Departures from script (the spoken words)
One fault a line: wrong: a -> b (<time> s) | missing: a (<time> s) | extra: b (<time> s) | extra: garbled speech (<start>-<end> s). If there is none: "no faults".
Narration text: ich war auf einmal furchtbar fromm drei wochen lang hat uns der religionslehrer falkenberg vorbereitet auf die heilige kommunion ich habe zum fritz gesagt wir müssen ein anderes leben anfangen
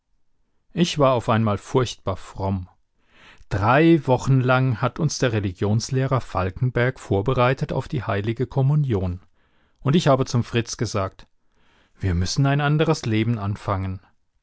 extra: und (9.8 s)